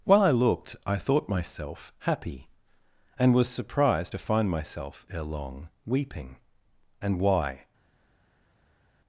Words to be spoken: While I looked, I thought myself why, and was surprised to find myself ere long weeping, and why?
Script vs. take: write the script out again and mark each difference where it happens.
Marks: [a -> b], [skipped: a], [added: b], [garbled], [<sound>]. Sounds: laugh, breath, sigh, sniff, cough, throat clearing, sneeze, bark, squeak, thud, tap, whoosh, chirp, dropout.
While I looked, I thought myself [why, -> happy] and was surprised to find myself ere long weeping, and why?